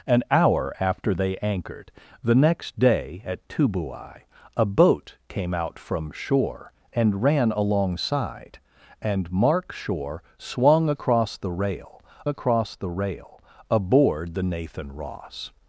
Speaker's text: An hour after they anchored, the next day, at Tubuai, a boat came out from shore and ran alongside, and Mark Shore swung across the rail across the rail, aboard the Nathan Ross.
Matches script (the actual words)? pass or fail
pass